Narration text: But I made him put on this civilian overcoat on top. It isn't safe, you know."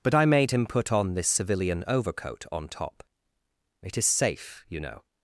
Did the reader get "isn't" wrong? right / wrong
wrong